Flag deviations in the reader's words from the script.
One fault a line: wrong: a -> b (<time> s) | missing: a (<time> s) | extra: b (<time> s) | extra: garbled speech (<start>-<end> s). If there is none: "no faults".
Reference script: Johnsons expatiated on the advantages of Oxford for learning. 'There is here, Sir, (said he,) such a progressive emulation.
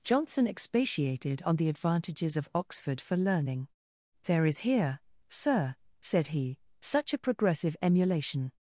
wrong: Johnsons -> Johnson (0.0 s)